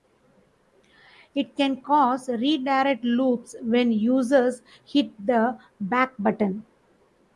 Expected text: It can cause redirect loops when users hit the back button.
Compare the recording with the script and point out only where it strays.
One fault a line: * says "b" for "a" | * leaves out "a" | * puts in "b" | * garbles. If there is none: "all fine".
all fine